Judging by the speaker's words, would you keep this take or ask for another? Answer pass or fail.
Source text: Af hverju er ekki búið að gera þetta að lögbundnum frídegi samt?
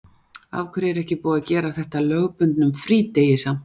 pass